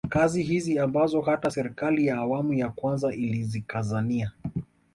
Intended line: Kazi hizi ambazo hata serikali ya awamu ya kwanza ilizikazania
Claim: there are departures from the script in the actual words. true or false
false